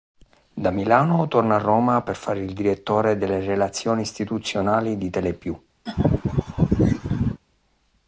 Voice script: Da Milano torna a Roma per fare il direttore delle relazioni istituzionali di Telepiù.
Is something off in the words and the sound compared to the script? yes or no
yes